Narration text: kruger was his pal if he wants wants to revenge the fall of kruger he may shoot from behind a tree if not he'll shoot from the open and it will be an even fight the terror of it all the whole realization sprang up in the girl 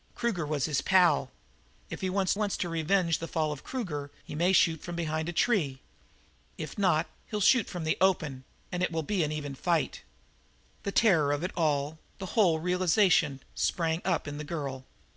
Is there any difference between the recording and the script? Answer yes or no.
no